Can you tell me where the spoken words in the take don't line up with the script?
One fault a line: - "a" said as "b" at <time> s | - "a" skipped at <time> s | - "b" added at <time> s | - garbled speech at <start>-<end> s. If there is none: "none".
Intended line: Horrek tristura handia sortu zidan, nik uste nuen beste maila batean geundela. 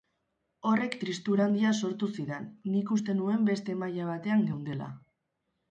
none